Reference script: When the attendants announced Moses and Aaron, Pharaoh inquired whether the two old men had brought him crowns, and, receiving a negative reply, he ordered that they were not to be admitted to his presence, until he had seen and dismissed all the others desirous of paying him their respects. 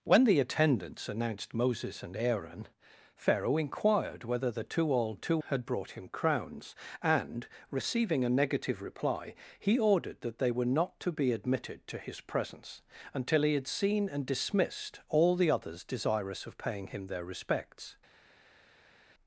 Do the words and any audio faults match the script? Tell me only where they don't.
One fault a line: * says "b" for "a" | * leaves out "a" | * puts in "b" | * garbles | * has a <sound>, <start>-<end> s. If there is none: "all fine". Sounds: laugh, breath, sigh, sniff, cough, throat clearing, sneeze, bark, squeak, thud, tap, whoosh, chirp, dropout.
* says "two" for "men"